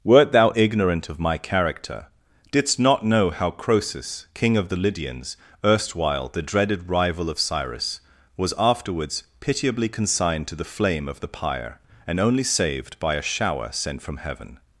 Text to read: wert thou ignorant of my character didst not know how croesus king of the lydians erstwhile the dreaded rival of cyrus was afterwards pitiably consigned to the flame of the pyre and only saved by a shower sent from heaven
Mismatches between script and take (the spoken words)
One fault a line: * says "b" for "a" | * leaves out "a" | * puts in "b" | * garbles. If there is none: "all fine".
all fine